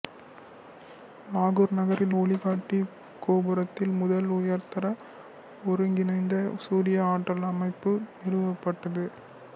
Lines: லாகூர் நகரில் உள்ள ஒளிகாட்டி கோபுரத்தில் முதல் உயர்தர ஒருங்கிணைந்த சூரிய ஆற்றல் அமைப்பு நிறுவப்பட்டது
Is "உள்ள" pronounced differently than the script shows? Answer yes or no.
yes